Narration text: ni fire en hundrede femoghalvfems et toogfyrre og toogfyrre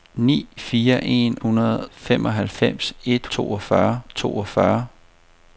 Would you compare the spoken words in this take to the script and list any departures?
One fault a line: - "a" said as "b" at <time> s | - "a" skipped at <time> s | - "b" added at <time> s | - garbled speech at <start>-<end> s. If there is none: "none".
none